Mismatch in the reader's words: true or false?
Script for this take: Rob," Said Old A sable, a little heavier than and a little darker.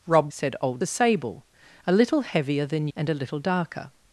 false